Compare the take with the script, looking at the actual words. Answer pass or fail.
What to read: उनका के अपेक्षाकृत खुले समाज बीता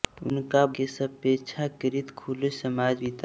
pass